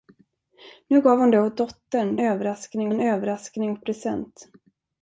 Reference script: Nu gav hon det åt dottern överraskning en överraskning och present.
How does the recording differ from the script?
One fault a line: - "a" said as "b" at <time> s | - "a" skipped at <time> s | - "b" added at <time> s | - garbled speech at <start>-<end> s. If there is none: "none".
none